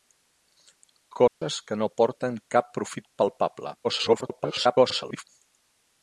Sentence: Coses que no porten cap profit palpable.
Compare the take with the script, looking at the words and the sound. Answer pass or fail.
fail